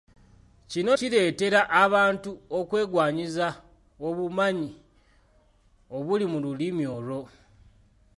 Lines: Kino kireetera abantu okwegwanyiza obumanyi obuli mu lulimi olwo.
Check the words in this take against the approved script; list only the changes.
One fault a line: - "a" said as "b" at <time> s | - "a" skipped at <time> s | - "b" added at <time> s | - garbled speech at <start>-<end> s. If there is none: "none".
none